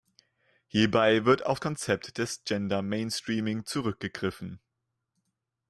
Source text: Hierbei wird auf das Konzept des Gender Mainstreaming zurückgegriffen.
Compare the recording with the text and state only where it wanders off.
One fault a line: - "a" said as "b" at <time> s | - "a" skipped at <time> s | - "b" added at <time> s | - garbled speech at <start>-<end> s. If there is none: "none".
- "das" skipped at 1.6 s